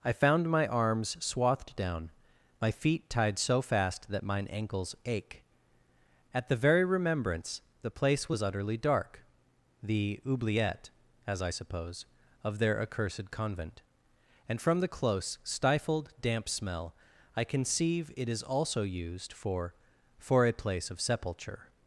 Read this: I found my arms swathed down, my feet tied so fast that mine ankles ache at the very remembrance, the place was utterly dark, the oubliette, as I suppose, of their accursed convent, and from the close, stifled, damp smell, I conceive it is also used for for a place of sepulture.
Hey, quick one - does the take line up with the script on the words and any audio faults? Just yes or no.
yes